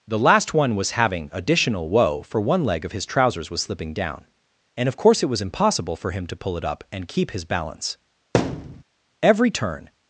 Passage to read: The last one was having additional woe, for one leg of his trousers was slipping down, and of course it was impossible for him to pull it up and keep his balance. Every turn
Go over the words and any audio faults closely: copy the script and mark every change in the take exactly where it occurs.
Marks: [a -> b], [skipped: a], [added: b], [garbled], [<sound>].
The last one was having additional woe, for one leg of his trousers was slipping down, and of course it was impossible for him to pull it up and keep his balance. [thud] Every turn